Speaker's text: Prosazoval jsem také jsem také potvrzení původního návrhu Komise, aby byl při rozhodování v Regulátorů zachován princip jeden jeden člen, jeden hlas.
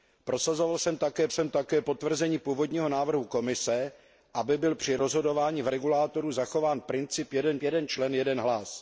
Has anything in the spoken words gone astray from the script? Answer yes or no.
no